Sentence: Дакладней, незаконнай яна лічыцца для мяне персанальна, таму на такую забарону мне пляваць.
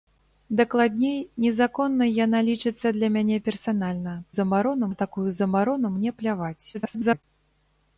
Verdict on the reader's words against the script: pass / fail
fail